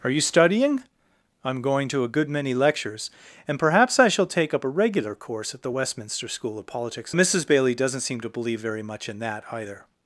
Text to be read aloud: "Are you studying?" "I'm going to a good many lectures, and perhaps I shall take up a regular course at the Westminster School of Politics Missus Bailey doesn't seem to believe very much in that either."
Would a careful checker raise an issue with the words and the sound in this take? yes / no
no